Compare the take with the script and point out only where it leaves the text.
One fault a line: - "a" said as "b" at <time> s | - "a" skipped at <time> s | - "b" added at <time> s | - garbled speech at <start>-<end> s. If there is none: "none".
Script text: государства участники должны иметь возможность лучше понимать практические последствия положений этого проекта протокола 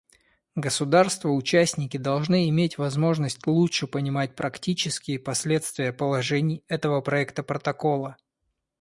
none